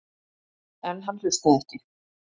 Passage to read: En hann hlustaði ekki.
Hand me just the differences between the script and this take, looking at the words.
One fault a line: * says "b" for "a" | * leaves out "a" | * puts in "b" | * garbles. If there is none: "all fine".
all fine